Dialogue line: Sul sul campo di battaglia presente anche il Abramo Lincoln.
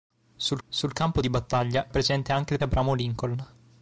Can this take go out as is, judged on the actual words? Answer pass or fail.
pass